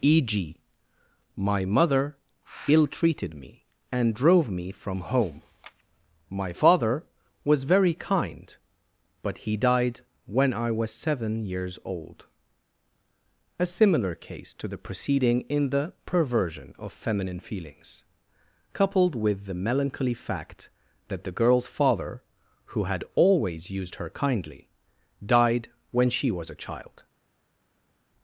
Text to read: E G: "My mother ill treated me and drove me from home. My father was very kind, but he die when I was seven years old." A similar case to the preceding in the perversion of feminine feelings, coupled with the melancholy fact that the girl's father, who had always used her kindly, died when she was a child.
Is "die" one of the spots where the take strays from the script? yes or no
yes